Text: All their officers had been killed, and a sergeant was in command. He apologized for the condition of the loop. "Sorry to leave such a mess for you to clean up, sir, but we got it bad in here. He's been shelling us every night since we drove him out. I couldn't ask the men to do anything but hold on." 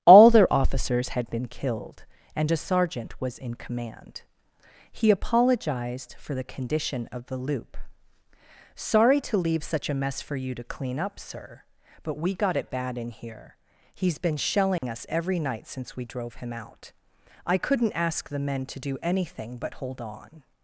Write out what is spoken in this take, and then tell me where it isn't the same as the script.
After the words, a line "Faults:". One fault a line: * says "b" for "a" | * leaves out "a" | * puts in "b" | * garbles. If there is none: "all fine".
All their officers had been killed, and a sergeant was in command. He apologized for the condition of the loop. "Sorry to leave such a mess for you to clean up, sir, but we got it bad in here. He's been shelling us every night since we drove him out. I couldn't ask the men to do anything but hold on."
Faults:
all fine